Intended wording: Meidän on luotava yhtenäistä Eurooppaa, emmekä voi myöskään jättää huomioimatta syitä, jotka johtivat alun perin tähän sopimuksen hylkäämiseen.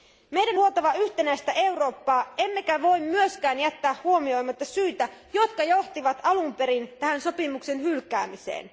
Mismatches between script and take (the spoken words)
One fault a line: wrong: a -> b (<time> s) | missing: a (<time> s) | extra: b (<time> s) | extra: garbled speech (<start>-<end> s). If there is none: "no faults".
missing: on (0.6 s)